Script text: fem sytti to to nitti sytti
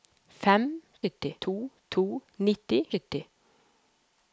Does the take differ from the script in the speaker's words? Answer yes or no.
no